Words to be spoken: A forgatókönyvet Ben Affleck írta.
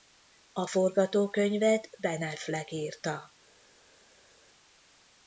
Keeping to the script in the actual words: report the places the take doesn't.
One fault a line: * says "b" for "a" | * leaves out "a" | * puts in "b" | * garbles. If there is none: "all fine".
all fine